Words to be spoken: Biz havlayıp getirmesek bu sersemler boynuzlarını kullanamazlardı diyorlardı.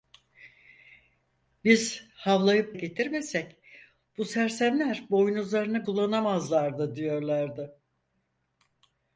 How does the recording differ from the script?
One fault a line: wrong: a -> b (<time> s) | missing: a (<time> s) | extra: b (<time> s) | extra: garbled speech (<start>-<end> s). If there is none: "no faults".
no faults